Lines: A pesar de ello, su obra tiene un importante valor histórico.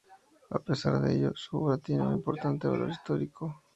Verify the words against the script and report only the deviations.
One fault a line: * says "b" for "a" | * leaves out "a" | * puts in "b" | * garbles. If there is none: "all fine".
all fine